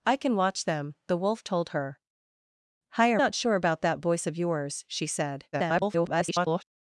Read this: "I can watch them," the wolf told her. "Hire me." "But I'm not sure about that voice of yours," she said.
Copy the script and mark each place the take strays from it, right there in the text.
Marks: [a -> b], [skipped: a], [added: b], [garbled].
"I can watch them," the wolf told her. "Hire [skipped: me." "But I'm] not sure about that voice of yours," she said. [garbled]